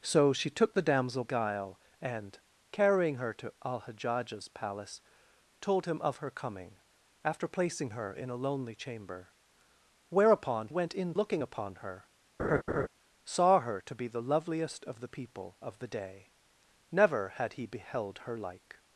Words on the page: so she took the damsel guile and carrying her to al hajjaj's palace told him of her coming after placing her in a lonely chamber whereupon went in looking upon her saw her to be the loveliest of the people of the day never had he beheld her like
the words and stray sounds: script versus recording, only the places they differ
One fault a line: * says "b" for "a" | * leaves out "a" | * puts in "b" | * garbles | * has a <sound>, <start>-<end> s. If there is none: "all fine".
* has a laugh, 12.4-12.9 s